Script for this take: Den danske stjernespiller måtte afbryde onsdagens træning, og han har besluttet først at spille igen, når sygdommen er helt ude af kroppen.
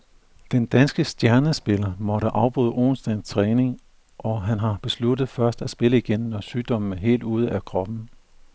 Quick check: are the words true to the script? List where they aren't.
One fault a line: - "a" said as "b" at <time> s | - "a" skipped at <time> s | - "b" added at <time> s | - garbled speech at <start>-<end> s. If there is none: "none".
none